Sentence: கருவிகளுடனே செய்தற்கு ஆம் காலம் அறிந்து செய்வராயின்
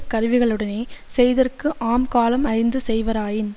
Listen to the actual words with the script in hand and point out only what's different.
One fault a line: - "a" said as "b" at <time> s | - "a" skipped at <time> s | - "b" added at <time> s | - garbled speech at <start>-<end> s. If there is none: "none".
none